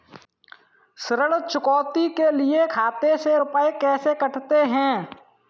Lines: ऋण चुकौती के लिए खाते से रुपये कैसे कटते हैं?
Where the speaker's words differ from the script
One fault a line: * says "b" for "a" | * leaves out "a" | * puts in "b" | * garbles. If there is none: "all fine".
all fine